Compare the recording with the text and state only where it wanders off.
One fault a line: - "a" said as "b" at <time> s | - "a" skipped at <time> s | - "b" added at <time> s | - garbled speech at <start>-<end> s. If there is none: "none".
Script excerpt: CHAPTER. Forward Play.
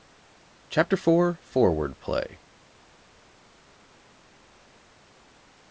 - "IV" added at 0.9 s